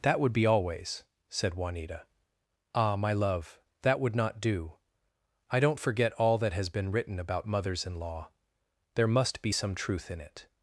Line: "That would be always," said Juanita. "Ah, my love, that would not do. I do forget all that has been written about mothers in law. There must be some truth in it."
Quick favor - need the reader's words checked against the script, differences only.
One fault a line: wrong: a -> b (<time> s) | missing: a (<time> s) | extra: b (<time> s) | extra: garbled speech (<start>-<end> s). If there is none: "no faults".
wrong: do -> don't (5.6 s)